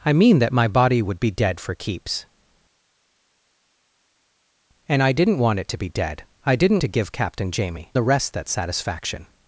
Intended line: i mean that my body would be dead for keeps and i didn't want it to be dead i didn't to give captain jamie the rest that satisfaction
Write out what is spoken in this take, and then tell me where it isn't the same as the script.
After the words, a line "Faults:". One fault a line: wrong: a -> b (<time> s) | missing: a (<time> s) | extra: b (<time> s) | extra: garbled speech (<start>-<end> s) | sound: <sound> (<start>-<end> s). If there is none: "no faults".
i mean that my body would be dead for keeps and i didn't want it to be dead i didn't to give captain jamie the rest that satisfaction
Faults:
no faults